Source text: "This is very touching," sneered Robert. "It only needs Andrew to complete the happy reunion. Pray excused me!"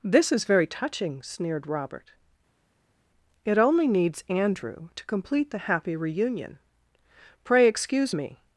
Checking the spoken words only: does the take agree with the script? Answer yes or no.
no